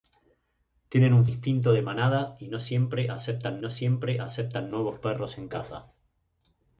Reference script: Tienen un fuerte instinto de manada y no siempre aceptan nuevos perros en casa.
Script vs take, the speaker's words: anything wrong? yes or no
yes